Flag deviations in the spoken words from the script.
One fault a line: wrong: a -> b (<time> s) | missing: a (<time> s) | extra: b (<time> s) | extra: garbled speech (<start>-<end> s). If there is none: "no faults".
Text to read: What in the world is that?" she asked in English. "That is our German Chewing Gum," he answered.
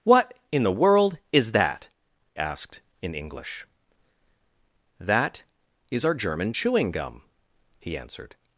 missing: she (1.9 s)